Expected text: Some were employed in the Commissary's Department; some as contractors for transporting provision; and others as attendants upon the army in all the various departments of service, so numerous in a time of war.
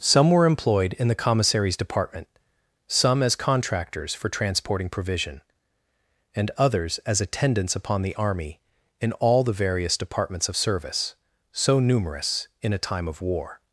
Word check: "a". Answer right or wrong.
right